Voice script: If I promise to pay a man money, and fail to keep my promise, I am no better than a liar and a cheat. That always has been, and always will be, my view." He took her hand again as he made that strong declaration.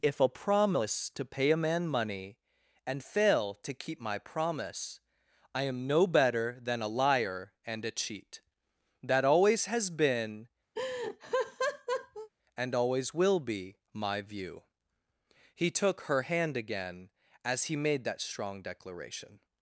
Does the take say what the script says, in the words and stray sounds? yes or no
no